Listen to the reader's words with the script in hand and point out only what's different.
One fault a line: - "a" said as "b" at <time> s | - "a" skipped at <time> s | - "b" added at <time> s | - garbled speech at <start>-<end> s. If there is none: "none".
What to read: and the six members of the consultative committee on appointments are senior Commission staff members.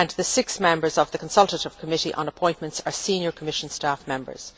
none